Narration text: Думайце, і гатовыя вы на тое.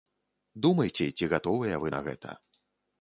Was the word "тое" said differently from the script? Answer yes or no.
yes